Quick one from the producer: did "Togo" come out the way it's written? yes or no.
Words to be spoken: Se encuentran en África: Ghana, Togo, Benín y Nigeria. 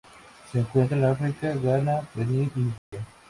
no